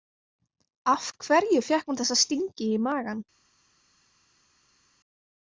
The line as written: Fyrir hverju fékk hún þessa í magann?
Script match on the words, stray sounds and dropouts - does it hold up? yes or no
no